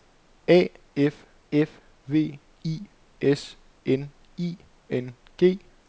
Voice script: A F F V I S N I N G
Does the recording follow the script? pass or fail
pass